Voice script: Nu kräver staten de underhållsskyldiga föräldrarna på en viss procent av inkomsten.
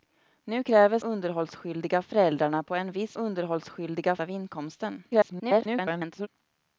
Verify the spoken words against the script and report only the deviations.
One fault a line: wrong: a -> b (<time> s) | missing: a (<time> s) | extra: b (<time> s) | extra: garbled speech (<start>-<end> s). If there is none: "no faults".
missing: staten de (1.0 s)
wrong: procent -> underhållsskyldiga (3.2 s)
extra: garbled speech (5.1-6.3 s)